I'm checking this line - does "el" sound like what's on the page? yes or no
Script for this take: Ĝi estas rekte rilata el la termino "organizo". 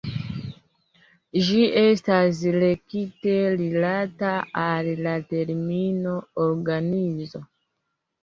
no